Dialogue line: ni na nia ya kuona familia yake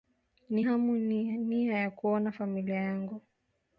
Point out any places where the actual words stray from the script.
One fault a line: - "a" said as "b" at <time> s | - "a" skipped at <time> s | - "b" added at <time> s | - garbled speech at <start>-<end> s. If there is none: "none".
- "hamu" added at 0.6 s
- "yake" said as "yangu" at 2.7 s